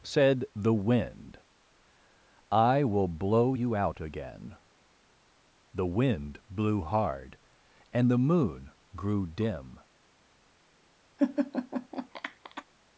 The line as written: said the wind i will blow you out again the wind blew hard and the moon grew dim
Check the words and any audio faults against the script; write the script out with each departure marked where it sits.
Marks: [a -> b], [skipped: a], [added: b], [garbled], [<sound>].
said the wind i will blow you out again the wind blew hard and the moon grew dim [laugh]